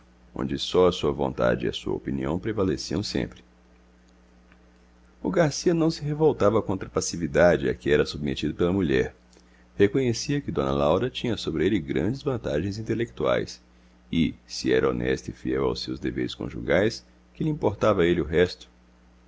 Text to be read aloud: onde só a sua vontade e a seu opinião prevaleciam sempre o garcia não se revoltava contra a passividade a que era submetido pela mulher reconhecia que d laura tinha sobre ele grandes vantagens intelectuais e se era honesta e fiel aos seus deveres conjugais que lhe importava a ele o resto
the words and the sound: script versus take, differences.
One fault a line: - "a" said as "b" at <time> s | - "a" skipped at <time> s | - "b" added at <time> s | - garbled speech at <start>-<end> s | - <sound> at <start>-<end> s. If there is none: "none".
- "seu" said as "sua" at 1.7 s